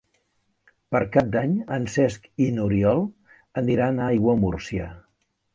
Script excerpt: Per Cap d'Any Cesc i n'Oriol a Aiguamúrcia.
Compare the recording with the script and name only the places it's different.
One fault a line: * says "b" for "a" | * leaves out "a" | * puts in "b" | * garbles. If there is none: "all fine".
* puts in "en"
* puts in "aniran"